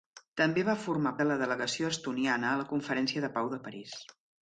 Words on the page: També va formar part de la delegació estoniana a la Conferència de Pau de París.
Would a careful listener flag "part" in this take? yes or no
yes